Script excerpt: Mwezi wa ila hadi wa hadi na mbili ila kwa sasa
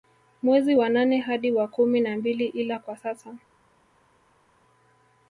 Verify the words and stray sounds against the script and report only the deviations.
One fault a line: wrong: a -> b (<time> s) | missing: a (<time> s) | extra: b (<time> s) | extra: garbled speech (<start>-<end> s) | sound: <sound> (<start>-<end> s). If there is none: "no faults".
wrong: ila -> nane (0.9 s)
wrong: hadi -> kumi (1.7 s)